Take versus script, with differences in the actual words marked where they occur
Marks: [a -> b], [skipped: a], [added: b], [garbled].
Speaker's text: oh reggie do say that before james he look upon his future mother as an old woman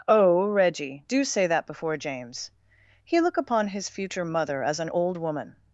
oh reggie do say that before james he look upon his future mother as an old woman